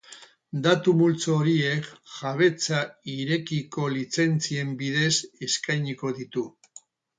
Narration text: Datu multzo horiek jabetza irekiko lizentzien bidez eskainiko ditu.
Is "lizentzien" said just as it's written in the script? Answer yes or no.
yes